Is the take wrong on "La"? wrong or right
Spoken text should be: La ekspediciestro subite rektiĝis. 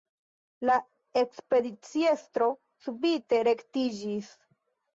right